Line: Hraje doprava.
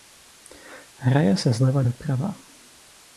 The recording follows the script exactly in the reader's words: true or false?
false